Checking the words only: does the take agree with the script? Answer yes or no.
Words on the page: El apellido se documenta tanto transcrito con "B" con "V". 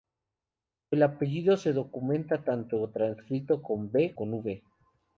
yes